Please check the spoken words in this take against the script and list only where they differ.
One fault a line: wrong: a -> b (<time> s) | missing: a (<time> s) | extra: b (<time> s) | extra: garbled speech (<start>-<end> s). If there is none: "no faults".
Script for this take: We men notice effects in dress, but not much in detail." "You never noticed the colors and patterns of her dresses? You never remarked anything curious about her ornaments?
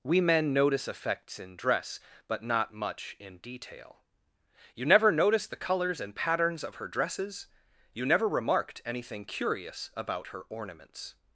no faults